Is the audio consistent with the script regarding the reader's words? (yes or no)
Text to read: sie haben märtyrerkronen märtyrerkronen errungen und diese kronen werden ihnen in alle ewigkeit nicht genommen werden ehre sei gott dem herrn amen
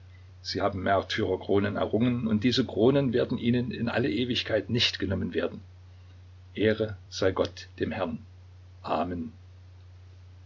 no